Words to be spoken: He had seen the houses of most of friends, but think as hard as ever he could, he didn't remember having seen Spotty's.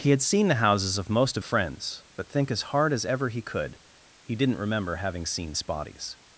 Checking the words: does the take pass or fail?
pass